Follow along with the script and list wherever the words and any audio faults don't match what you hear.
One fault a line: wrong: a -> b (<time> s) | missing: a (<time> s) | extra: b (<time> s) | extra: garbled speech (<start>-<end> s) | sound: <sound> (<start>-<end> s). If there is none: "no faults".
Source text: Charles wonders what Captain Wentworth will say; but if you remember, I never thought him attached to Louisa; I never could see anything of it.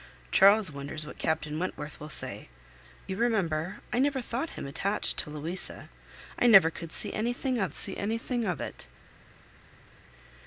missing: but if (2.5 s)
extra: see anything of (7.7 s)